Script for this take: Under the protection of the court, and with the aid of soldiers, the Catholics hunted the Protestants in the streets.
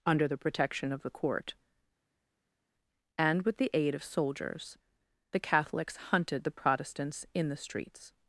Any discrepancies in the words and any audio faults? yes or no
no